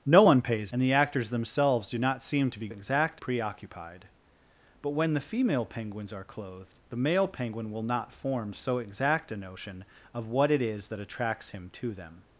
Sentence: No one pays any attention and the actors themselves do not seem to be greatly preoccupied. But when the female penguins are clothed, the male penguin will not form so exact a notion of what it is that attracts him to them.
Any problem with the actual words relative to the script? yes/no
yes